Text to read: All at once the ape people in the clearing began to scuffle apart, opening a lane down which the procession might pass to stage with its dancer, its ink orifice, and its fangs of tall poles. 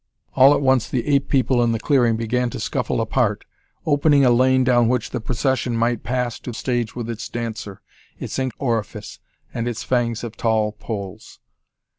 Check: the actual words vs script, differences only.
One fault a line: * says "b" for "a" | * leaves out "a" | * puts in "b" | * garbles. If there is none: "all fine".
all fine